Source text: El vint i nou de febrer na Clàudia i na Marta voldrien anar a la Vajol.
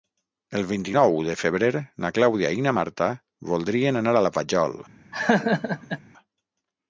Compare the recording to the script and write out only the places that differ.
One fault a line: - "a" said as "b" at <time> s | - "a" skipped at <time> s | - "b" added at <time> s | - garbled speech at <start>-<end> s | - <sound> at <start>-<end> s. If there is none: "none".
- laugh at 5.1-6.0 s